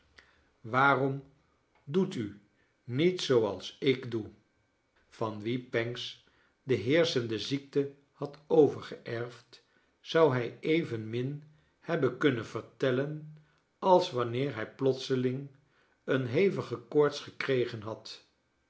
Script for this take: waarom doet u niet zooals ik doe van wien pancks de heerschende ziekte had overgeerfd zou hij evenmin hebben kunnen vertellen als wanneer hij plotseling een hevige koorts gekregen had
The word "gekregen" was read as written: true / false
true